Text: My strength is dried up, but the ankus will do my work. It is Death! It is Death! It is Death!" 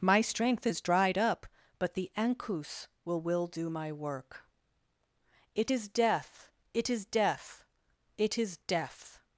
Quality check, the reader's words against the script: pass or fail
fail